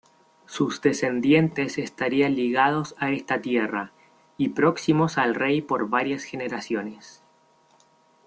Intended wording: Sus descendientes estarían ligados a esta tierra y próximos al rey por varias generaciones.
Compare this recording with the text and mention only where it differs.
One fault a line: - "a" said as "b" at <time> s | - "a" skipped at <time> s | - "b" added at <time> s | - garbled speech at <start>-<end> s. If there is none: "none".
none